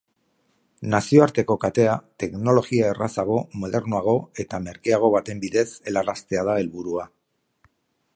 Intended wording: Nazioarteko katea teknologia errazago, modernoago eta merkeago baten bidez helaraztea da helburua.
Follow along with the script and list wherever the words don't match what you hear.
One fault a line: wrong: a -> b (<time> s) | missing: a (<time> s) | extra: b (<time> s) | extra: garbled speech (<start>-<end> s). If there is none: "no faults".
no faults